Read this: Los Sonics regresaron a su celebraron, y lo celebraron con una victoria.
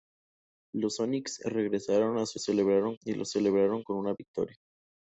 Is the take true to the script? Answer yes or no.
yes